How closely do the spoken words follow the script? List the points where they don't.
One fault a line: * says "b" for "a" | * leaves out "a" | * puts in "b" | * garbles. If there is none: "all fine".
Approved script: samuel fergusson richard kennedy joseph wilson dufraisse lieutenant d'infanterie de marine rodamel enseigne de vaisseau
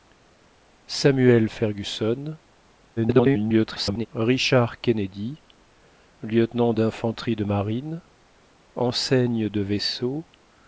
* garbles
* leaves out "joseph wilson dufraisse"
* leaves out "rodamel"